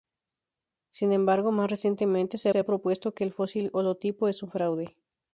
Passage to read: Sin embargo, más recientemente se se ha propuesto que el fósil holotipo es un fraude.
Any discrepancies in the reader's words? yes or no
no